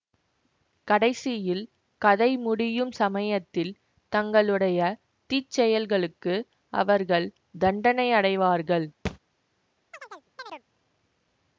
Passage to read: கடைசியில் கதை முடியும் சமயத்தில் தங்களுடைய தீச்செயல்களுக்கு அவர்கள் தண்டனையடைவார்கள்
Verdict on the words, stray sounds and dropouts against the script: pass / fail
fail